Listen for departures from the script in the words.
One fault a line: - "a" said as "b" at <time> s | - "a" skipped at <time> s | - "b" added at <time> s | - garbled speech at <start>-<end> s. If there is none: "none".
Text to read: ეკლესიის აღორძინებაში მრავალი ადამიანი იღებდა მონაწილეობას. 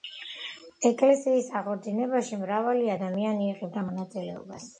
none